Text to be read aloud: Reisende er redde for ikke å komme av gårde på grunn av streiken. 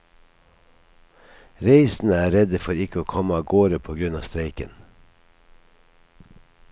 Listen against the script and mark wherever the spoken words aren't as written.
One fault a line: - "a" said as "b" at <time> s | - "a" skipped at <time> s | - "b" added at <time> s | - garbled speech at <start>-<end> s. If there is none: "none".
none